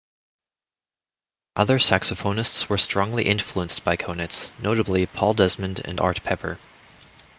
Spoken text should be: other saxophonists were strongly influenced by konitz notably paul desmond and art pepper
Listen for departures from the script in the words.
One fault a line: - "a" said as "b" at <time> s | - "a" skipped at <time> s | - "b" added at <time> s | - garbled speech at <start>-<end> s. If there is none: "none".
none